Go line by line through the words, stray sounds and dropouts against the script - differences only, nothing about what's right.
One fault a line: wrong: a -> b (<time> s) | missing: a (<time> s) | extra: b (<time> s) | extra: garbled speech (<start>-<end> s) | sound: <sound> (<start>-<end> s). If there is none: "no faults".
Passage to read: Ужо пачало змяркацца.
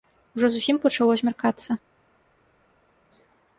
extra: зусім (0.6 s)